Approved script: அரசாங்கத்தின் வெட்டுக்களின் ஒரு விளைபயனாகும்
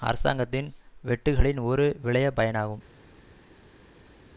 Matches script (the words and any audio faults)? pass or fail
pass